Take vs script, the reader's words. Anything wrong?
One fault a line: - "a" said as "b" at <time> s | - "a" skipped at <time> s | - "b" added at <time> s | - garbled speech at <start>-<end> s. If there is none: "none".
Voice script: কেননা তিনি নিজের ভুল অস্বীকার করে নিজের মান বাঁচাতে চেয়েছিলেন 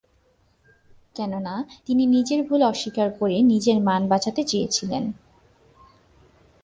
none